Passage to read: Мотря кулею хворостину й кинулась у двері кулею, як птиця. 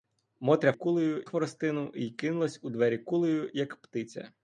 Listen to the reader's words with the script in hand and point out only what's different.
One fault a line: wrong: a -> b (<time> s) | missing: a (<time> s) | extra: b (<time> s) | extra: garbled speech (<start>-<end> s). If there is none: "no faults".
no faults